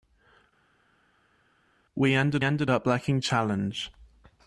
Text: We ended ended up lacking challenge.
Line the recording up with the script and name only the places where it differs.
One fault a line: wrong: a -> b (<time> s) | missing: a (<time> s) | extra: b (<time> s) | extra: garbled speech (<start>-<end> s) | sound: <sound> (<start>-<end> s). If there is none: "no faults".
no faults